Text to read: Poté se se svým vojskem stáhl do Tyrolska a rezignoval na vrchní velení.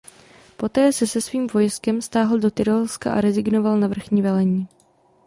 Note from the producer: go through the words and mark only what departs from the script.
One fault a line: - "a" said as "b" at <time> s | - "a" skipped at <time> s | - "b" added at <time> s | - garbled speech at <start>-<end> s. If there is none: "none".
none